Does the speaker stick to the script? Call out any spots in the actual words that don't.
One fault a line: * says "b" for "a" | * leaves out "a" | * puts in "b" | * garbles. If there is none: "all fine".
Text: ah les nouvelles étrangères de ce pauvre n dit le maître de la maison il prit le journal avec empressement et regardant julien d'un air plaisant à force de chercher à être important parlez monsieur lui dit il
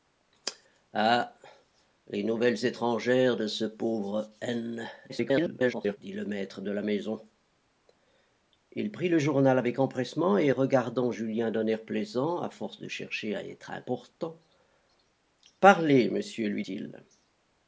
* garbles
* leaves out "dit"